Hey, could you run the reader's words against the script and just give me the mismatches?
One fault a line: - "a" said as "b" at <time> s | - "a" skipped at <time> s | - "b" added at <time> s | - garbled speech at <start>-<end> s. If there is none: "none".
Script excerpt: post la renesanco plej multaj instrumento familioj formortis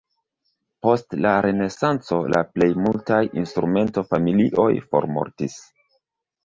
- "la" added at 2.3 s